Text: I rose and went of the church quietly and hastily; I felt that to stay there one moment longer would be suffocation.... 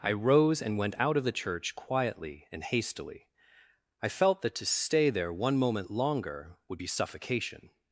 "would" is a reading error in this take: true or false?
false